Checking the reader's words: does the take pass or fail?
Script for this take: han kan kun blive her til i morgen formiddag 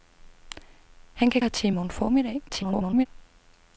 fail